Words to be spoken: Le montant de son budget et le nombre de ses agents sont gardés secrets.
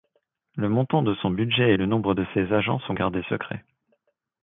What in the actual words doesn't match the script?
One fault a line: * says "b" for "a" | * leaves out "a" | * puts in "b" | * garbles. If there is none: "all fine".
all fine